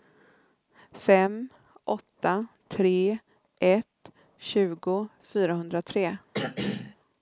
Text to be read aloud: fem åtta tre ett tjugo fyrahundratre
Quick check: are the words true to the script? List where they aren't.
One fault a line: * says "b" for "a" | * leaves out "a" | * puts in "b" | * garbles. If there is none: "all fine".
all fine